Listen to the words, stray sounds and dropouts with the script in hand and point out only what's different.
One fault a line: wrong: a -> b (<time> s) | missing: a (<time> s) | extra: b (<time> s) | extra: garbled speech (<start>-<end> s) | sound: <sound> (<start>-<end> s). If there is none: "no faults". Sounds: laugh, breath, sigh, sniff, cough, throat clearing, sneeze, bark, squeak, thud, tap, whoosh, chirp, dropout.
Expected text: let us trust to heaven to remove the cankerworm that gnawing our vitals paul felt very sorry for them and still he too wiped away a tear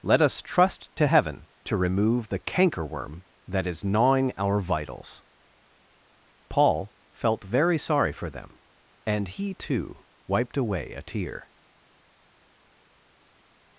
extra: is (3.7 s)
missing: still (9.3 s)